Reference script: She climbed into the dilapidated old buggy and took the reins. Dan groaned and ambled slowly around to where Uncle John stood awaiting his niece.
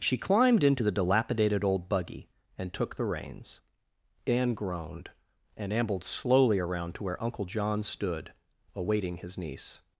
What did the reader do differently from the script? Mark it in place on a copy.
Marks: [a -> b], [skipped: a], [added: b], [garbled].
She climbed into the dilapidated old buggy and took the reins. [Dan -> Anne] groaned and ambled slowly around to where Uncle John stood awaiting his niece.